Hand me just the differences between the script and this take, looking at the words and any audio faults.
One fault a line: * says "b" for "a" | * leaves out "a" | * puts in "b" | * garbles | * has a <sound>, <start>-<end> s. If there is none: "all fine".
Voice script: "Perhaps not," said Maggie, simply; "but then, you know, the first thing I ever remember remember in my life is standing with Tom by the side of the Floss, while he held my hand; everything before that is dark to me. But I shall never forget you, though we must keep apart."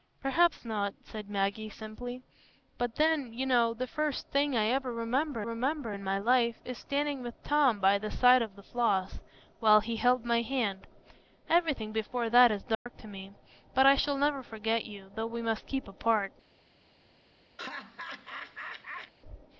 * has a dropout, 12.7-12.9 s
* has a laugh, 17.6-19.1 s